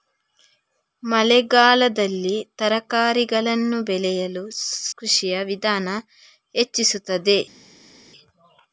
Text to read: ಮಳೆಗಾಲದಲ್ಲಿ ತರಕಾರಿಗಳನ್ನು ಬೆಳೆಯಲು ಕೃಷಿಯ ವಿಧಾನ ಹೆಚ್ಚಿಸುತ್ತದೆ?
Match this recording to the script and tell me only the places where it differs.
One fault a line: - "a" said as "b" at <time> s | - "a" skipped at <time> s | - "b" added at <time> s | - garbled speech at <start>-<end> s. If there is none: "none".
none